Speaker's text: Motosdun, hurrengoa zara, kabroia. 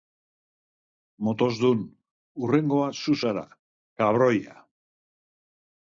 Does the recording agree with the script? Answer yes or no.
no